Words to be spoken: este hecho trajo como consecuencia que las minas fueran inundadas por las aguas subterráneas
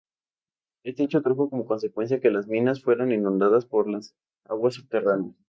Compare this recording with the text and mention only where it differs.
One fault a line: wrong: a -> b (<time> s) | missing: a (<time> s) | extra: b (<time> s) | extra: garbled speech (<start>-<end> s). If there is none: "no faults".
no faults